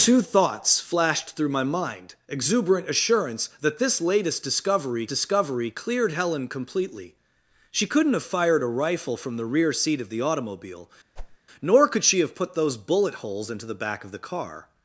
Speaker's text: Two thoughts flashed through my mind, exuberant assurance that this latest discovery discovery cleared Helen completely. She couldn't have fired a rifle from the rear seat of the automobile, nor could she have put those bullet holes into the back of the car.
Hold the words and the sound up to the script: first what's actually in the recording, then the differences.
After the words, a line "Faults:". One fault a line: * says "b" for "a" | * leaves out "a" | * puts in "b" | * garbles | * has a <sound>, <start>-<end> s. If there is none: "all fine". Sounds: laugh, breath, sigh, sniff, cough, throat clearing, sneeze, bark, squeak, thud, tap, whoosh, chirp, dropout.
Two thoughts flashed through my mind, exuberant assurance that this latest discovery discovery cleared Helen completely. She couldn't have fired a rifle from the rear seat of the automobile, nor could she have put those bullet holes into the back of the car.
Faults:
* has a whoosh, 11.2-11.4 s